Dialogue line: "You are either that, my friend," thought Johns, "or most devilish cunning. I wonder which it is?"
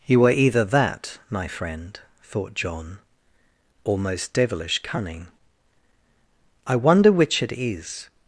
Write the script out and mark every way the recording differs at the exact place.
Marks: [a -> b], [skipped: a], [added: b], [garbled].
"You are either that, my friend," thought [Johns, -> John] "or most devilish cunning. I wonder which it is?"